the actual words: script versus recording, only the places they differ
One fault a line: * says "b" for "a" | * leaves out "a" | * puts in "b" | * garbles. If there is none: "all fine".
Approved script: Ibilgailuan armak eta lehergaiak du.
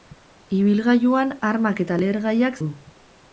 all fine